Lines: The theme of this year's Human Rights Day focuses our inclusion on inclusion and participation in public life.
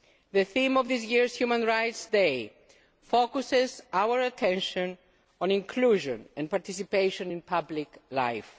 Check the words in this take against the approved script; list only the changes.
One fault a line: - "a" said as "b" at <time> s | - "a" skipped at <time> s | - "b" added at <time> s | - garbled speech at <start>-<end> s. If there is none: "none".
- "inclusion" said as "attention" at 4.2 s